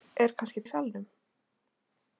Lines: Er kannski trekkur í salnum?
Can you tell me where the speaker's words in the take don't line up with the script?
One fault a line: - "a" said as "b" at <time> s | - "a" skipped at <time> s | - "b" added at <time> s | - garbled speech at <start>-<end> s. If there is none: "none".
- "trekkur" skipped at 0.6 s